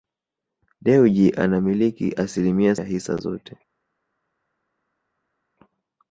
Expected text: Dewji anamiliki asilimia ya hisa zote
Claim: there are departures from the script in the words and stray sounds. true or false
false